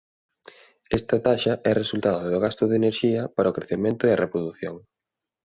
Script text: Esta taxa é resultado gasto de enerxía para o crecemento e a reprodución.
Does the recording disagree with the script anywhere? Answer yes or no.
yes